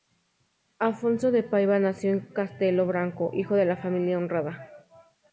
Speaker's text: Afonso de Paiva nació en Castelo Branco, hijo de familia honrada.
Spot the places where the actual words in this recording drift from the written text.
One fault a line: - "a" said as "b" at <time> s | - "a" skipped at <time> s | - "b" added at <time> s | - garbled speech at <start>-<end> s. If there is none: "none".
none